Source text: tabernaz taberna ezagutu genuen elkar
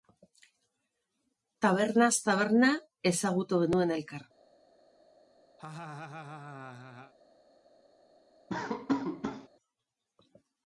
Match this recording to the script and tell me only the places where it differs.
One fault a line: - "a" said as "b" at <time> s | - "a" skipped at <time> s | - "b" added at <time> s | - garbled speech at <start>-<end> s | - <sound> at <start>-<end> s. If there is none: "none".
- laugh at 5.6-7.1 s
- laugh at 8.5-9.5 s